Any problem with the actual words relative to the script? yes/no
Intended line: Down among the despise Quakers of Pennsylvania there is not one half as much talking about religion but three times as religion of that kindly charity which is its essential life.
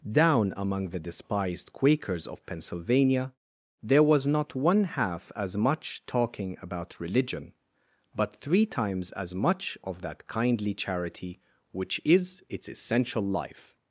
yes